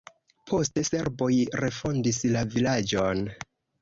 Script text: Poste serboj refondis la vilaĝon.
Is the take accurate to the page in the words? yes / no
yes